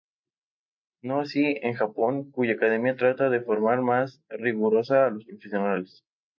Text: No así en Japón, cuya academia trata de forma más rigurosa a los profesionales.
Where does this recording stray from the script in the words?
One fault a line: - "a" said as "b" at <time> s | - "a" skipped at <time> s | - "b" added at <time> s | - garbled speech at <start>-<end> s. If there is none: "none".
none